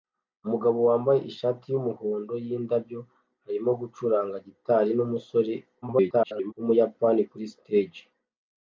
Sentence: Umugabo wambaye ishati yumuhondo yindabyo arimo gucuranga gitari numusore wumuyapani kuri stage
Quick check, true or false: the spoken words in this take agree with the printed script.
false